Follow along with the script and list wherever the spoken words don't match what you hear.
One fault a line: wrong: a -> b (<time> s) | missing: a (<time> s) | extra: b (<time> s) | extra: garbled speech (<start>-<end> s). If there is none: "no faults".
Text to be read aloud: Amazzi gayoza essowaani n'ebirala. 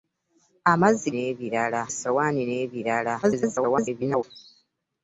wrong: gayoza -> n'ebirala (1.1 s)
extra: garbled speech (3.2-4.2 s)